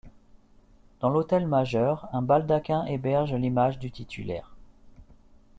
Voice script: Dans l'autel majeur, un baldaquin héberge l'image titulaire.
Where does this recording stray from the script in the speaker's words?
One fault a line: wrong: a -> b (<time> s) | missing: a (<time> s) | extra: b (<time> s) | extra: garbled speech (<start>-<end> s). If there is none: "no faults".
extra: du (3.8 s)